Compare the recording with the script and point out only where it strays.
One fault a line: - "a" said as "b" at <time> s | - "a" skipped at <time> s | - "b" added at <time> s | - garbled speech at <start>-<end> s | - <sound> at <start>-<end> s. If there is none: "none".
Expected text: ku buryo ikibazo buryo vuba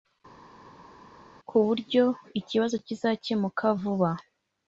- "buryo" said as "kizakemuka" at 2.9 s